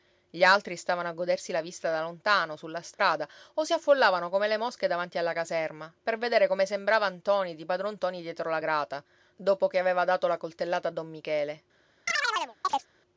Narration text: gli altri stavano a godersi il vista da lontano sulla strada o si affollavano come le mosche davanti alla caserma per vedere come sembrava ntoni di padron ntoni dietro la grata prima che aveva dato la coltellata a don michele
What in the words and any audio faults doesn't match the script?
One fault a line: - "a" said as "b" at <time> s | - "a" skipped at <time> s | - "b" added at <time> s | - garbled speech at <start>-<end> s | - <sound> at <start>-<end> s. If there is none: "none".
- "il" said as "la" at 1.5 s
- dropout at 2.9-3.0 s
- "prima" said as "dopo" at 9.3 s
- chirp at 12.1-12.9 s